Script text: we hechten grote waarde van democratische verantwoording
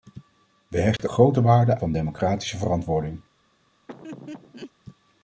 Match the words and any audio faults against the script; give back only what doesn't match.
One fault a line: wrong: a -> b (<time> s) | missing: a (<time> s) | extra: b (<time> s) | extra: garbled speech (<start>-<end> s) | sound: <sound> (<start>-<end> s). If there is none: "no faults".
sound: dropout (1.0-1.0 s)
sound: laugh (3.9-4.7 s)